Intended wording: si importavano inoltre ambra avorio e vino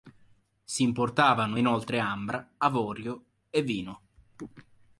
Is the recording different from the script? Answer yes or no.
no